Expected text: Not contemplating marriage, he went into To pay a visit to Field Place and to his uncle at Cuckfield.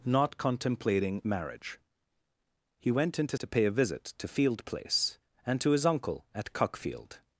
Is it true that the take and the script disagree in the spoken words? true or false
false